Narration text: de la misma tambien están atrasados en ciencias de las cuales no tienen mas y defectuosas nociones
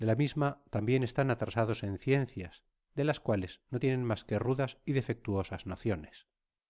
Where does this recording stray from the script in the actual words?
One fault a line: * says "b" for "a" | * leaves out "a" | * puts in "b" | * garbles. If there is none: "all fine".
* puts in "que rudas"